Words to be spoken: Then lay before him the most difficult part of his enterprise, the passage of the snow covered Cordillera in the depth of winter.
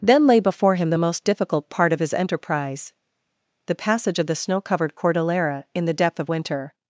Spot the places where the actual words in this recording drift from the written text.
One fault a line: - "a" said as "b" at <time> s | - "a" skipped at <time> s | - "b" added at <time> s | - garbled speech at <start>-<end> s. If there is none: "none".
none